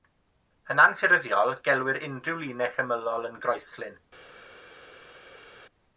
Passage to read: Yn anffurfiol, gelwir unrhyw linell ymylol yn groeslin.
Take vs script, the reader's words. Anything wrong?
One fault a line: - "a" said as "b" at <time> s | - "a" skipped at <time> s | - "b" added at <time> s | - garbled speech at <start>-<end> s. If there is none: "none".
none